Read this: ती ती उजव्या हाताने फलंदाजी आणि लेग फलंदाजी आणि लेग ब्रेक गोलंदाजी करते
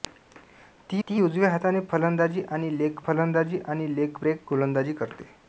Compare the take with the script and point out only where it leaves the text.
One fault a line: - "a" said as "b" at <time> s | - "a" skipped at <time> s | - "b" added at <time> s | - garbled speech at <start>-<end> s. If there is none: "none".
none